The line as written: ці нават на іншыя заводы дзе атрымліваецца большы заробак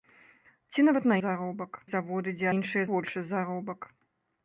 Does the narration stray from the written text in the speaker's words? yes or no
yes